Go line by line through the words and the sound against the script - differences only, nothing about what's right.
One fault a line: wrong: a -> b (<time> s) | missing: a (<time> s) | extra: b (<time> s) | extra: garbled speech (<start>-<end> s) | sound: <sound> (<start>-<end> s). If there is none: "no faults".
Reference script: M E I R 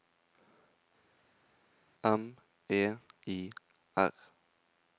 no faults